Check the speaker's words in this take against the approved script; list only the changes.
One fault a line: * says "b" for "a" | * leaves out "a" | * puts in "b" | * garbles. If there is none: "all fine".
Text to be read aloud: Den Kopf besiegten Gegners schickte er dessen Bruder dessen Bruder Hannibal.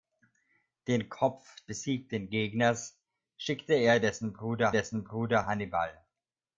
all fine